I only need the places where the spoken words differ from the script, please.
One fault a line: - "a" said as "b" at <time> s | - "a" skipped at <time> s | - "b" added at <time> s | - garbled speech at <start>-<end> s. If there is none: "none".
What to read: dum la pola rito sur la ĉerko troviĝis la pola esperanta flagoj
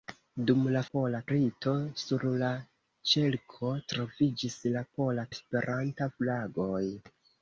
none